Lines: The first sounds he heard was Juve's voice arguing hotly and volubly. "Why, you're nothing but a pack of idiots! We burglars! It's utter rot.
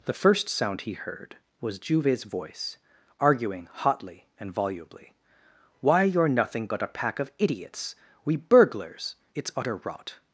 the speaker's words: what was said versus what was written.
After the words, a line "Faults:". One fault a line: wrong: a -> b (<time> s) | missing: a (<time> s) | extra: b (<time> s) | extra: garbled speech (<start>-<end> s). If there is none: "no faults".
The first sound he heard was Juve's voice arguing hotly and volubly. "Why, you're nothing but a pack of idiots! We burglars! It's utter rot.
Faults:
wrong: sounds -> sound (0.5 s)